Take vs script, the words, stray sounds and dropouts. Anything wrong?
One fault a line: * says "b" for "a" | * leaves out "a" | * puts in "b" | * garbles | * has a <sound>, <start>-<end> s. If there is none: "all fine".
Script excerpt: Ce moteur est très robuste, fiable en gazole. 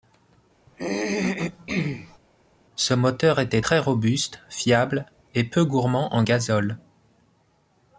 * has a throat clearing, 0.7-2.2 s
* says "était" for "est"
* puts in "et peu gourmand"